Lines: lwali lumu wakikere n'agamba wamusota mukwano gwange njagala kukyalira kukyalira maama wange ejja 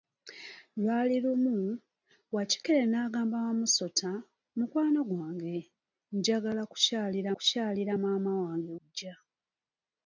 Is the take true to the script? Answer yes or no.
yes